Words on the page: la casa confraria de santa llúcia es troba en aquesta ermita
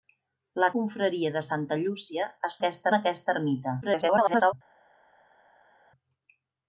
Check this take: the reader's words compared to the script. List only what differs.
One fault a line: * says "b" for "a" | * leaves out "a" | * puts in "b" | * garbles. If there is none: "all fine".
* leaves out "casa"
* says "aquesta" for "troba"
* garbles